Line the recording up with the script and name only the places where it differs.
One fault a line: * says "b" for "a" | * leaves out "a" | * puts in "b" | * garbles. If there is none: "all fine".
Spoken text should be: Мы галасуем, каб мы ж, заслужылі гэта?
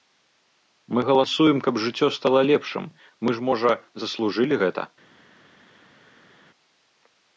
* puts in "жыццё стала лепшым"
* puts in "можа"